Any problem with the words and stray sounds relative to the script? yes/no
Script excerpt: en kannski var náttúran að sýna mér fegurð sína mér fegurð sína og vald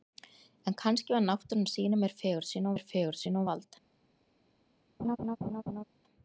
yes